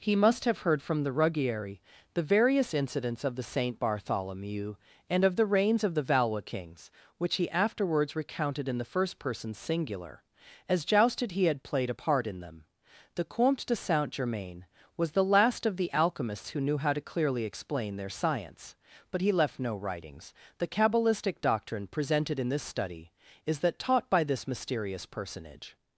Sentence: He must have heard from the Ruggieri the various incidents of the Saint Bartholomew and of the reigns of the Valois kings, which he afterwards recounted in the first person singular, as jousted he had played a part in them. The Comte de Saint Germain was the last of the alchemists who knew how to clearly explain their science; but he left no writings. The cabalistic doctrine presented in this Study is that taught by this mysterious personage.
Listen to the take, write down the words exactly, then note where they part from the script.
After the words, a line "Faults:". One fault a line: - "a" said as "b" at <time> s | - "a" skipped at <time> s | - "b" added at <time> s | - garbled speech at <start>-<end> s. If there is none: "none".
He must have heard from the Ruggieri the various incidents of the Saint Bartholomew and of the reigns of the Valois kings, which he afterwards recounted in the first person singular, as jousted he had played a part in them. The Comte de Saint Germain was the last of the alchemists who knew how to clearly explain their science; but he left no writings. The cabalistic doctrine presented in this Study is that taught by this mysterious personage.
Faults:
none